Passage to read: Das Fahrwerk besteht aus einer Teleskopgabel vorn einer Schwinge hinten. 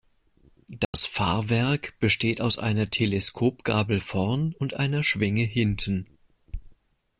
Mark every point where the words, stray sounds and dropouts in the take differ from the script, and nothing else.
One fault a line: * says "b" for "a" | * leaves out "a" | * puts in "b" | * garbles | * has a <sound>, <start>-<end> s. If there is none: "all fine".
* has a dropout, 0.8-0.9 s
* puts in "und"